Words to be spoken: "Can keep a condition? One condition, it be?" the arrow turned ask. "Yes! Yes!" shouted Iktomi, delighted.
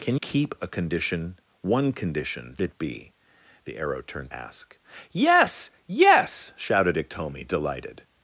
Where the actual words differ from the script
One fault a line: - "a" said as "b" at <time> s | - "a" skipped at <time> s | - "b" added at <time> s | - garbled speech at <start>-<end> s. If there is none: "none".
none